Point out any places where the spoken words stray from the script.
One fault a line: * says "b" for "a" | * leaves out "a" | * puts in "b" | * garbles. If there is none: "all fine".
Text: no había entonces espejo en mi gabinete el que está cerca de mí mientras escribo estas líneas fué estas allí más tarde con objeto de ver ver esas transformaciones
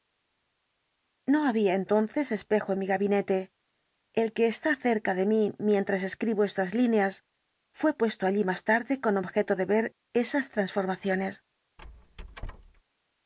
* says "puesto" for "estas"
* leaves out "ver"